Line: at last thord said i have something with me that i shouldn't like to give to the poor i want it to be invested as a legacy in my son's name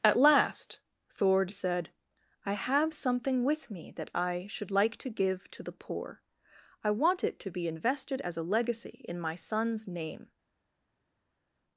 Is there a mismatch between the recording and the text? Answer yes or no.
yes